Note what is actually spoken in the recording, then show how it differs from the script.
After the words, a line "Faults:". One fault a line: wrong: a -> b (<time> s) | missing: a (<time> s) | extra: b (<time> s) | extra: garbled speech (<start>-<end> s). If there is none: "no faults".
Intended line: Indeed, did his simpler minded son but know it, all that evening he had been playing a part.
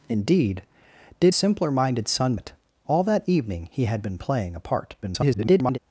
Indeed, did simpler minded son it, all that evening he had been playing a part. [garbled]
Faults:
missing: his (1.4 s)
missing: but know (2.4 s)
extra: garbled speech (5.0-5.8 s)